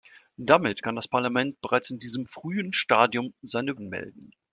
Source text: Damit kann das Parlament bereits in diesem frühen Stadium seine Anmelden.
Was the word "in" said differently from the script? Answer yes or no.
no